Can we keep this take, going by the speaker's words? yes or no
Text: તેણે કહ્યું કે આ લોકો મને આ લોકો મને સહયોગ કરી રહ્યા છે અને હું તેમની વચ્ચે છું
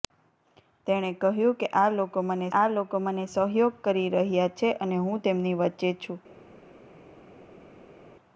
yes